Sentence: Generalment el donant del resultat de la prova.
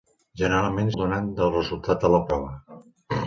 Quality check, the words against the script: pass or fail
pass